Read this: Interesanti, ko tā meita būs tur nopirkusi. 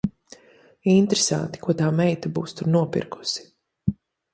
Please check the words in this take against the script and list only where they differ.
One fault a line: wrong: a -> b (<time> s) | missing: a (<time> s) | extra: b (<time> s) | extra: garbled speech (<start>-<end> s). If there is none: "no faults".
no faults